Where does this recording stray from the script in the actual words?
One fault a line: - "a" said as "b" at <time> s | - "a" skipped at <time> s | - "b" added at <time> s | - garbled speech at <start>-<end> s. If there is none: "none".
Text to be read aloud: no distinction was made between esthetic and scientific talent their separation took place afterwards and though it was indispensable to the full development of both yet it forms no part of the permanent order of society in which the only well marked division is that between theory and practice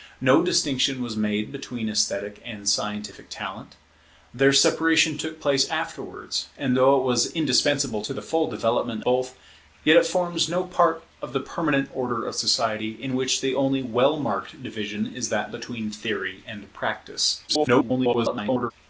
- "of" skipped at 9.0 s
- garbled speech at 17.5-18.7 s